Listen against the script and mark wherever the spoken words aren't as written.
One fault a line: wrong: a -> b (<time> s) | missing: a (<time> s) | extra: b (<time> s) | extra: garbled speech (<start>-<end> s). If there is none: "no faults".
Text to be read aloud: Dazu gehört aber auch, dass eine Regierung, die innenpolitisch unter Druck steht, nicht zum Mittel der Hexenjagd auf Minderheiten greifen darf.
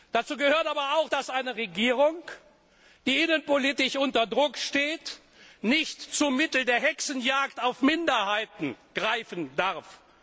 no faults